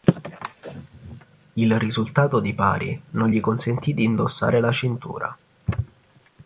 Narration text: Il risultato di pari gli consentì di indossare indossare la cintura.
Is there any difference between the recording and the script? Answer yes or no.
yes